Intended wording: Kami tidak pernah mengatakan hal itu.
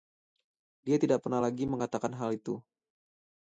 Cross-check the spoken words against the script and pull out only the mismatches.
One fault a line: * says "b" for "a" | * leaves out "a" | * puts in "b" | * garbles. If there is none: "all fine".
* says "Dia" for "Kami"
* puts in "lagi"